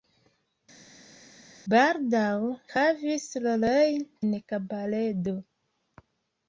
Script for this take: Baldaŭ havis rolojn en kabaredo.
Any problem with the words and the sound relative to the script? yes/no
no